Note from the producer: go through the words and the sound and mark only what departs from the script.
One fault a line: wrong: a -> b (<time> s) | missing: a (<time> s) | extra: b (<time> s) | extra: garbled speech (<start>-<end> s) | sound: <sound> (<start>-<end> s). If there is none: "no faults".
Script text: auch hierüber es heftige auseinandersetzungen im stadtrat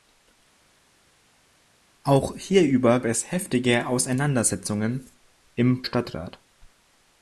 no faults